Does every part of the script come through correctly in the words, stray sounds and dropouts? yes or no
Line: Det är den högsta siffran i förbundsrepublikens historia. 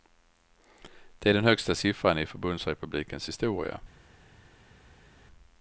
yes